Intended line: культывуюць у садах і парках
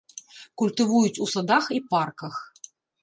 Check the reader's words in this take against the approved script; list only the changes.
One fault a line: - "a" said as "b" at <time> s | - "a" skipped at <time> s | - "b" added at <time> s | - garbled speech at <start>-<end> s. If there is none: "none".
none